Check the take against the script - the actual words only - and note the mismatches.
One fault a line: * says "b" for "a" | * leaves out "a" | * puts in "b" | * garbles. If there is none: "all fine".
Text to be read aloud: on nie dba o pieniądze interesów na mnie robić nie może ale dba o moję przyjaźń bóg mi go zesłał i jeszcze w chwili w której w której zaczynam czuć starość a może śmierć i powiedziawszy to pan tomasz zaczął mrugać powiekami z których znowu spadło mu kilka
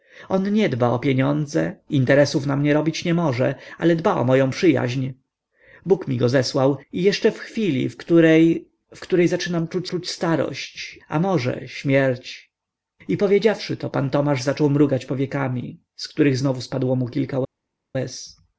* puts in "czuć"